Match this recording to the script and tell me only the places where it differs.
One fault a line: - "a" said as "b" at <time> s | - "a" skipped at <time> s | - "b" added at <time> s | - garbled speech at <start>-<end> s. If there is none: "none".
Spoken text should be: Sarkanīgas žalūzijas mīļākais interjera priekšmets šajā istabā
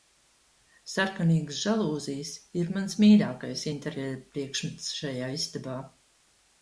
- "ir mans" added at 2.6 s